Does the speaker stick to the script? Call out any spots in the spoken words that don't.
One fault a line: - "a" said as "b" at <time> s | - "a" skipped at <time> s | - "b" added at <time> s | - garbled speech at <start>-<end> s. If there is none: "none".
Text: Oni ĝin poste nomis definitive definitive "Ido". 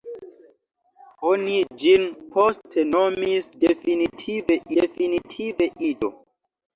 none